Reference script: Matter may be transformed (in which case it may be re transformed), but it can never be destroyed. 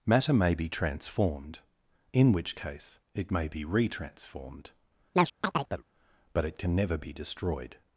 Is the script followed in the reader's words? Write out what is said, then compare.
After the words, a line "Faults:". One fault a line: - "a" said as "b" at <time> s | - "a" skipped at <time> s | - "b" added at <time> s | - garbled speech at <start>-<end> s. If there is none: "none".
Matter may be transformed (in which case it may be re transformed), but it can never be destroyed.
Faults:
none